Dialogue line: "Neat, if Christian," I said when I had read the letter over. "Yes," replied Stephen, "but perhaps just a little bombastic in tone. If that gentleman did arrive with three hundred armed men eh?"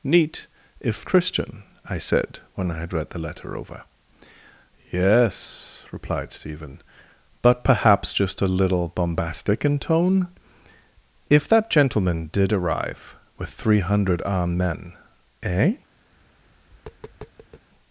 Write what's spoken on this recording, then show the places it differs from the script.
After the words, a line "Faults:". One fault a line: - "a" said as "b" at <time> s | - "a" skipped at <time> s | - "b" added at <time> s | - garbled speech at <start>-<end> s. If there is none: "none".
"Neat, if Christian," I said when I had read the letter over. "Yes," replied Stephen, "but perhaps just a little bombastic in tone. If that gentleman did arrive with three hundred armed men eh?"
Faults:
none